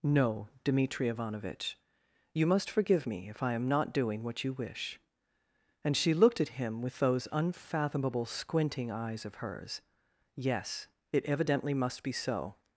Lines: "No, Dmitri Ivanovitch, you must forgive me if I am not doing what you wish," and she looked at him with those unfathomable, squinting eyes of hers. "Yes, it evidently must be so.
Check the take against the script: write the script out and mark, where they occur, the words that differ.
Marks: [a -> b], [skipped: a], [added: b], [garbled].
"No, Dmitri Ivanovitch, you must forgive me if I am not doing what you wish," and she looked at him with those unfathomable, squinting eyes of hers. "Yes, it evidently must be so.